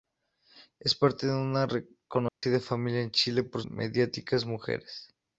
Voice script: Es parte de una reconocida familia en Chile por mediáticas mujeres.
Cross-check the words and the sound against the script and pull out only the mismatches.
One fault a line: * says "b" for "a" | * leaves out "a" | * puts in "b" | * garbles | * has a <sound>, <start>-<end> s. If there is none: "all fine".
* has a dropout, 2.3-2.4 s